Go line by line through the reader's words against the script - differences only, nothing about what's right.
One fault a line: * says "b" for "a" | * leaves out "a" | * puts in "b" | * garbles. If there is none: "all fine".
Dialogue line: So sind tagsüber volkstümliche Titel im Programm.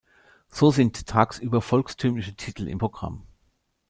all fine